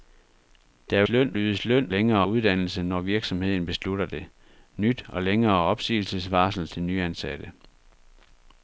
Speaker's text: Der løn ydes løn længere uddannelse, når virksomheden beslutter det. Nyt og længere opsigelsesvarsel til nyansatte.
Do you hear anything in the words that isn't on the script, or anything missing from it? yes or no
no